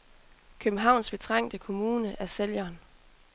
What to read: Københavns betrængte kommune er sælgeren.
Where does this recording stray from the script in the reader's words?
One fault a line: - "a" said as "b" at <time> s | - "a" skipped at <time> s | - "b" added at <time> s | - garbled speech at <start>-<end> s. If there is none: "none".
none